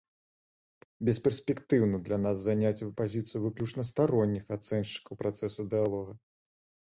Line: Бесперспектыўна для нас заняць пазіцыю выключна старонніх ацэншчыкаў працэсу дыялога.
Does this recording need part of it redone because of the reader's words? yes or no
no